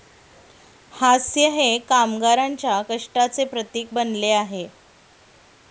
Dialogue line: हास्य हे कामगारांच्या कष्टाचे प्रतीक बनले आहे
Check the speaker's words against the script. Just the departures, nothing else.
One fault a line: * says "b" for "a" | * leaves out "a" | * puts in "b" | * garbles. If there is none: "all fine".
all fine